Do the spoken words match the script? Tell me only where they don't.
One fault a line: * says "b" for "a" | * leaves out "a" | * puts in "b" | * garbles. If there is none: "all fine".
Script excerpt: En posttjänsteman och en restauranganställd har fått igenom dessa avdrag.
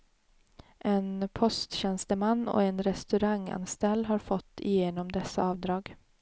all fine